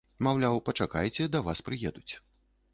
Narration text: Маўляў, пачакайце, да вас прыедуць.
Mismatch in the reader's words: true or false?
false